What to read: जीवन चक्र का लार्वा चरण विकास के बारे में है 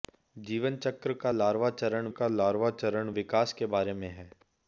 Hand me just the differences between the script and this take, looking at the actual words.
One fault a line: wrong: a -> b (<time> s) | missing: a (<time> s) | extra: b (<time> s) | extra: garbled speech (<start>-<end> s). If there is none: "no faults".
extra: का लार्वा चरण (2.1 s)